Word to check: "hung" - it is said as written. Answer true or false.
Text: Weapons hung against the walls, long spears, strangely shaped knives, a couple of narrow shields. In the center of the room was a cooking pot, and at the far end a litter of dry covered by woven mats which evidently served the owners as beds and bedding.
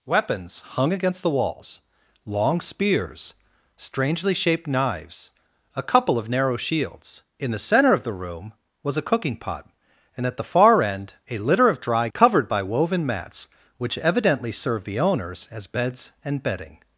true